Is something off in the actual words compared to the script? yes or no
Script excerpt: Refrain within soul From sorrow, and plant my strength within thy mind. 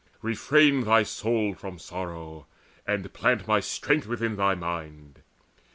yes